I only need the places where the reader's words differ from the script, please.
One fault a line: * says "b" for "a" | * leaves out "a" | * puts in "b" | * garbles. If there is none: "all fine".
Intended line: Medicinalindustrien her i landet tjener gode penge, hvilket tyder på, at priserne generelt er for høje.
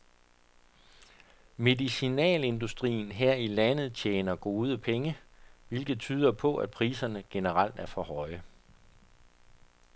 all fine